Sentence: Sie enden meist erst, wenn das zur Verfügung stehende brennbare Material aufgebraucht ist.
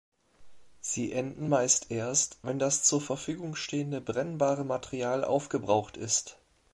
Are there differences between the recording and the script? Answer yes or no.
no